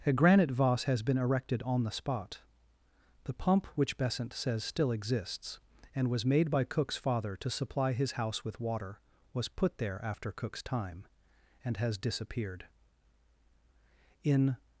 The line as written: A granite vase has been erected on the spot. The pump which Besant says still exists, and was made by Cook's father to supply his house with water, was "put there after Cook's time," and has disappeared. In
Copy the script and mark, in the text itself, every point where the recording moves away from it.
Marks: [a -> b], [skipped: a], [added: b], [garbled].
A granite vase has been erected on the spot. The pump which Besant says still exists, and was made by Cook's father to supply his house with water, was "put there after Cook's time," and has disappeared. In